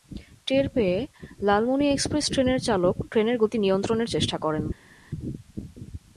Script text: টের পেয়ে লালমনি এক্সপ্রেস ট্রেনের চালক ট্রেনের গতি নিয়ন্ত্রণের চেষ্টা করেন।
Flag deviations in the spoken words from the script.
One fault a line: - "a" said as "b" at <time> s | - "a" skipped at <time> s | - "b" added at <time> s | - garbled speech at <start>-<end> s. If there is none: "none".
none